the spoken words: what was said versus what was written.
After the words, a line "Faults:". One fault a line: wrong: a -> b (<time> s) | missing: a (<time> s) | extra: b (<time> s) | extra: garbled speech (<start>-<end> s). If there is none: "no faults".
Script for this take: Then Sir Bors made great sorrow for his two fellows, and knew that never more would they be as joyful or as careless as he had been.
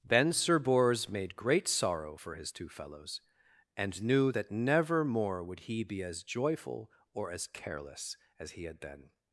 Then Sir Bors made great sorrow for his two fellows, and knew that never more would he be as joyful or as careless as he had been.
Faults:
wrong: they -> he (5.6 s)